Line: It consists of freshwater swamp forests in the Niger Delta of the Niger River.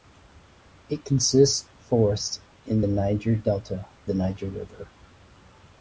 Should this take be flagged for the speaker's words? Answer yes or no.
yes